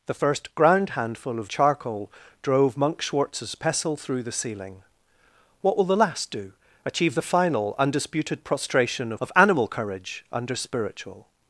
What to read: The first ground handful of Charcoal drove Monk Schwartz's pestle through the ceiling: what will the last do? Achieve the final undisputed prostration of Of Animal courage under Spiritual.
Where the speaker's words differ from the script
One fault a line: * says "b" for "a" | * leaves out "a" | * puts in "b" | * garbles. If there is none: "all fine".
all fine